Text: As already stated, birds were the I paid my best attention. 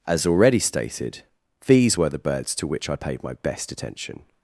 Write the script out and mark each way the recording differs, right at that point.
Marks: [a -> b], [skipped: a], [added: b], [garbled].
As already stated, [birds -> these] were the [added: birds to which] I paid my best attention.